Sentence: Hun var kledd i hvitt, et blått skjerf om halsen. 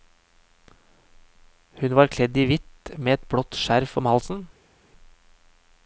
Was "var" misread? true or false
false